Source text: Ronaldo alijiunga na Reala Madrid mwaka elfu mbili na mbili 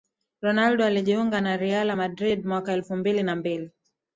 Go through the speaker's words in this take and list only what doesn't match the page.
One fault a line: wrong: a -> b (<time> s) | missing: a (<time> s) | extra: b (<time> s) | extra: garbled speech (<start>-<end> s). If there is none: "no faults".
no faults